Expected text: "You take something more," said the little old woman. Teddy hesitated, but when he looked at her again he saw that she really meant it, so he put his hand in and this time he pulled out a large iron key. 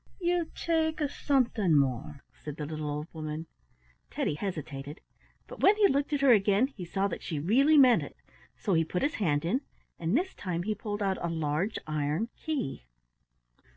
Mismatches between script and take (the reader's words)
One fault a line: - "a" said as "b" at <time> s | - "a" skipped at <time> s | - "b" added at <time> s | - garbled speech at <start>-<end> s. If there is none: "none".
none